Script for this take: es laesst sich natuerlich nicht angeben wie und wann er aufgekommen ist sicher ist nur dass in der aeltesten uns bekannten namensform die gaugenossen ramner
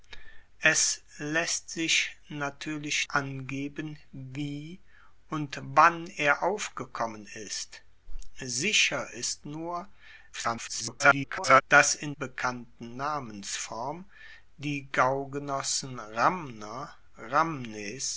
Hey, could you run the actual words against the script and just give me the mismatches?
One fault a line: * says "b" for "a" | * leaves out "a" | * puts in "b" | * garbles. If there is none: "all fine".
* leaves out "nicht"
* garbles
* leaves out "der aeltesten uns"